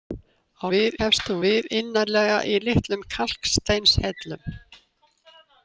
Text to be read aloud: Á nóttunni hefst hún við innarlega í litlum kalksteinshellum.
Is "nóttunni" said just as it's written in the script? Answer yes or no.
no